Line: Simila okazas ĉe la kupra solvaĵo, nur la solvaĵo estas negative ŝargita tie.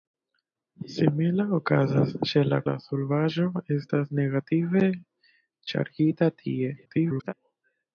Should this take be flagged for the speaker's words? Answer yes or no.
yes